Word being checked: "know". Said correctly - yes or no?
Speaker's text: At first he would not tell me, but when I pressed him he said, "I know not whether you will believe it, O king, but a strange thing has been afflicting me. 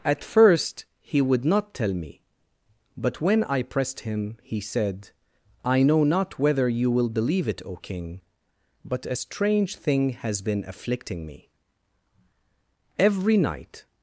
yes